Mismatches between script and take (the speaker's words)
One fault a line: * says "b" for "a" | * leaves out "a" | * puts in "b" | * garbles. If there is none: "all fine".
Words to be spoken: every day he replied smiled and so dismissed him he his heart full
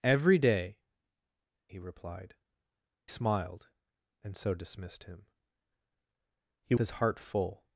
all fine